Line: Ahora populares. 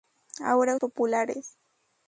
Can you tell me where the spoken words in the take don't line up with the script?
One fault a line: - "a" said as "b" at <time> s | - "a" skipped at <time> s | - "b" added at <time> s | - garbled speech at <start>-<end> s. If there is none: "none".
none